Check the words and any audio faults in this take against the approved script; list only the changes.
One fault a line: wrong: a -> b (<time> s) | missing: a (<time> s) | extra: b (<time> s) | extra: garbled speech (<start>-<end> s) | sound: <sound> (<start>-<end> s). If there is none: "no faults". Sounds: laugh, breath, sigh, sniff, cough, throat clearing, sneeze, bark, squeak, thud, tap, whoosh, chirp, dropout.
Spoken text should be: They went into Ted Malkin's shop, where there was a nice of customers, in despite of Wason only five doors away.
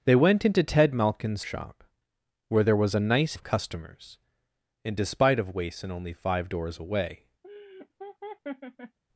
sound: laugh (7.4-9.0 s)